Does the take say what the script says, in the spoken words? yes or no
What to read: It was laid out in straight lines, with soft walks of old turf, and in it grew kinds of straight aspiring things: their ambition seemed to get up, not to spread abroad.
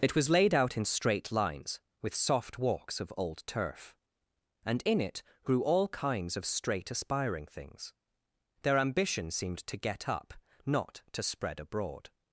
no